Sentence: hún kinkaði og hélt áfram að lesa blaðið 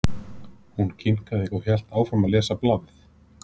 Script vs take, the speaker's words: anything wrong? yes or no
no